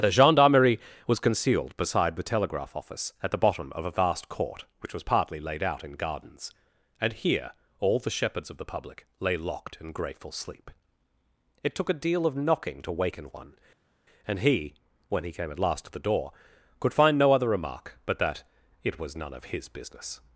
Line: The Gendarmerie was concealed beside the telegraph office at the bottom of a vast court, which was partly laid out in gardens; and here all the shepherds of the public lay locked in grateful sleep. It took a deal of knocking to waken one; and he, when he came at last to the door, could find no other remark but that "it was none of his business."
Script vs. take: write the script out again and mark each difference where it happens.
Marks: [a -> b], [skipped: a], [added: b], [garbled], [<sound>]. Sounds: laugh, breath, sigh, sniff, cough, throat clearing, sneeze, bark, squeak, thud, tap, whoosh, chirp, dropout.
The Gendarmerie was concealed beside the telegraph office at the bottom of a vast court, which was partly laid out in gardens; and here all the shepherds of the public lay locked in grateful sleep. It took a deal of knocking to waken one; and he, when he came at last to the door, could find no other remark but that "it was none of his business."